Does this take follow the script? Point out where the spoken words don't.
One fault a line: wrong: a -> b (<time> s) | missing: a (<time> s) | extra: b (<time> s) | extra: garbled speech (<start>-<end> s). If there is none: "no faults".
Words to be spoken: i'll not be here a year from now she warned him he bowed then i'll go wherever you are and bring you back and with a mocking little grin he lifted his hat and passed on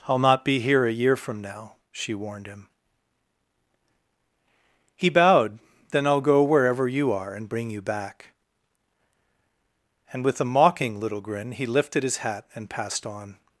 no faults